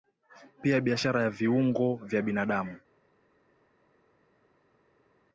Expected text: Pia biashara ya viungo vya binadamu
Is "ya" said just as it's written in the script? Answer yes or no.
yes